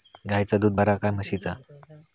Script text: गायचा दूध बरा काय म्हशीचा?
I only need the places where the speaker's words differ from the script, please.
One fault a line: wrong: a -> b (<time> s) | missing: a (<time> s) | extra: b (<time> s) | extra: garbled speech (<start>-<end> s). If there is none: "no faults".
no faults